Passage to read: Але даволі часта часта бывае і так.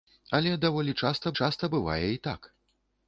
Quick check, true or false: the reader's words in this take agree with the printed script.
true